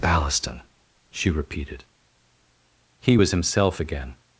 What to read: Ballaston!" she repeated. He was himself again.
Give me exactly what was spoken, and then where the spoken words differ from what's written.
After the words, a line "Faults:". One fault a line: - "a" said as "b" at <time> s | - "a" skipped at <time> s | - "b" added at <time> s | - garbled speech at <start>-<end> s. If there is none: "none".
Ballaston!" she repeated. He was himself again.
Faults:
none